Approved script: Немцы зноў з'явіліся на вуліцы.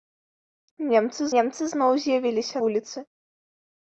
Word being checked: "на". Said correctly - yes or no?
no